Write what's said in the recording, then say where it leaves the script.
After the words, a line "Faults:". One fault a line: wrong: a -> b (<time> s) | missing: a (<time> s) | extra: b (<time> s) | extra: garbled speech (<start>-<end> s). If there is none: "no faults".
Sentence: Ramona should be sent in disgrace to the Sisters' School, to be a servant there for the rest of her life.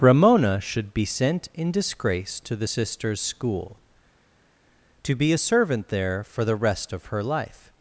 Ramona should be sent in disgrace to the Sisters' School, to be a servant there for the rest of her life.
Faults:
no faults